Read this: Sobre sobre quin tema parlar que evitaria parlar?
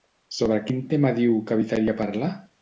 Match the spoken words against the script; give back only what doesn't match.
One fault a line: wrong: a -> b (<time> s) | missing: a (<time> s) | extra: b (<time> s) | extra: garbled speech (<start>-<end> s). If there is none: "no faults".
missing: sobre (0.6 s)
wrong: parlar -> diu (1.2 s)